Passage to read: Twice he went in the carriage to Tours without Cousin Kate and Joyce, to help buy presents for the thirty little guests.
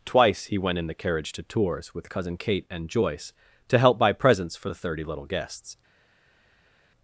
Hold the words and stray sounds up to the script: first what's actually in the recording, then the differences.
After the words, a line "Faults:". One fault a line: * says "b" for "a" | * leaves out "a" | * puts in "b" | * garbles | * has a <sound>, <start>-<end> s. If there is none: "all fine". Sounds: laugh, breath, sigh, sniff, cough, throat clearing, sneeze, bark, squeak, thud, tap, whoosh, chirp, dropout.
Twice he went in the carriage to Tours with Cousin Kate and Joyce, to help buy presents for the thirty little guests.
Faults:
* says "with" for "without"